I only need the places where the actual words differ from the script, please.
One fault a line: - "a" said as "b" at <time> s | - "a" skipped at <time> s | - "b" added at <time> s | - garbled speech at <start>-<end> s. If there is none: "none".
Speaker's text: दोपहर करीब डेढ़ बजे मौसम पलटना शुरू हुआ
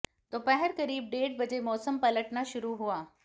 none